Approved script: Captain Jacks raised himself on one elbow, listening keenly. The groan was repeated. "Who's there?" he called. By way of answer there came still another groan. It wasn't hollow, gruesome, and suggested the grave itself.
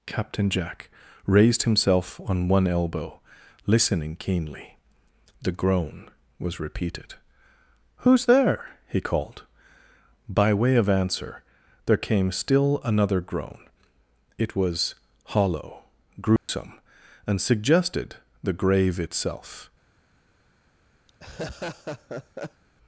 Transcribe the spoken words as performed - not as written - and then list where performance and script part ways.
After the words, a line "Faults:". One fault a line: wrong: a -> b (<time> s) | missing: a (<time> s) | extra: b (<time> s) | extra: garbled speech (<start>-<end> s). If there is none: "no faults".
Captain Jack raised himself on one elbow, listening keenly. The groan was repeated. "Who's there?" he called. By way of answer there came still another groan. It was hollow, gruesome, and suggested the grave itself.
Faults:
wrong: Jacks -> Jack (0.5 s)
wrong: wasn't -> was (14.5 s)